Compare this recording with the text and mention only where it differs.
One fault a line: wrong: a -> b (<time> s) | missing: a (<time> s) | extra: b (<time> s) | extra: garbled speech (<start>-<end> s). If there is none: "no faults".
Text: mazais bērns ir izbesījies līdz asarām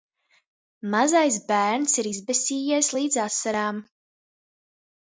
no faults